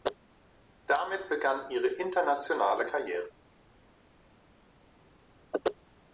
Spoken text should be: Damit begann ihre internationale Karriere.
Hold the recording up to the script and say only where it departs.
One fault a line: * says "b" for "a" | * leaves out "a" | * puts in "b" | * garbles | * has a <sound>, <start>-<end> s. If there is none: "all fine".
all fine